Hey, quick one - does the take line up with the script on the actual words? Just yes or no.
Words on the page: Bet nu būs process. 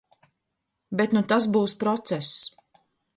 no